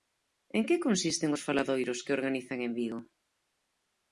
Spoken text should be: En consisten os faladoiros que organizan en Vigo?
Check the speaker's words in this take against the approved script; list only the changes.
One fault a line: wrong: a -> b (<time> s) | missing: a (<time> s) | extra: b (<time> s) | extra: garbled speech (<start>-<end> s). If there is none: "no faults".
extra: que (0.7 s)